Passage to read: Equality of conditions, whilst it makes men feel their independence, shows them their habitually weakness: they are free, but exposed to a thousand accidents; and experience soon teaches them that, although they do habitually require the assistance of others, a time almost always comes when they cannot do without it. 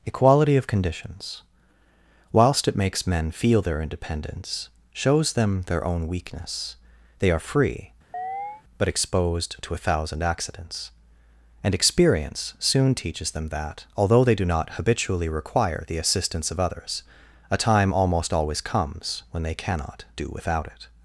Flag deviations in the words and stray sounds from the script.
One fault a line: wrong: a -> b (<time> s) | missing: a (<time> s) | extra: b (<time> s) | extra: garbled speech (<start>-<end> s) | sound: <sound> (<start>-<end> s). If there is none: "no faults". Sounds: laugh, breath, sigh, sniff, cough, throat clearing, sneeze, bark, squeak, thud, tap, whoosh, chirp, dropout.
wrong: habitually -> own (5.8 s)
sound: chirp (8.1-8.6 s)
extra: not (14.4 s)